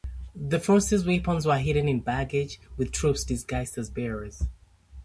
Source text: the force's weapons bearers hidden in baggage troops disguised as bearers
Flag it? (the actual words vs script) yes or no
yes